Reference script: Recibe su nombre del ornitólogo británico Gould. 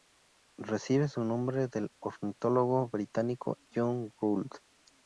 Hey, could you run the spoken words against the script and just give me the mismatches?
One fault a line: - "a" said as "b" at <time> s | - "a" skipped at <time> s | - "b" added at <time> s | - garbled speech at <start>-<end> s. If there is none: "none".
- "John" added at 3.8 s